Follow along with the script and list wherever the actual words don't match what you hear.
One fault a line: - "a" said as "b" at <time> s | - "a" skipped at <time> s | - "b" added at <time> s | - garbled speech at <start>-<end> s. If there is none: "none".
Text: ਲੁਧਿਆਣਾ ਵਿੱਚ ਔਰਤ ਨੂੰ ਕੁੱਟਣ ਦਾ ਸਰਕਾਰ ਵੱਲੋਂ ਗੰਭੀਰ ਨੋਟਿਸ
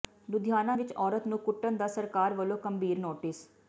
none